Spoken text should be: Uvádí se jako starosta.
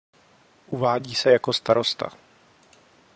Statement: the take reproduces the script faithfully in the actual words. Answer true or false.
true